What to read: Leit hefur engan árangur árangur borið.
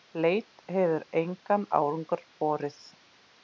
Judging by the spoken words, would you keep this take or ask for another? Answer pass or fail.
fail